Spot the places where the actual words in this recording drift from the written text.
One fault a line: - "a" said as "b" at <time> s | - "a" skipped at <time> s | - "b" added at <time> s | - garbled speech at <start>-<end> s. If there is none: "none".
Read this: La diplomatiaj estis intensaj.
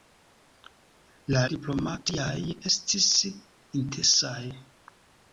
none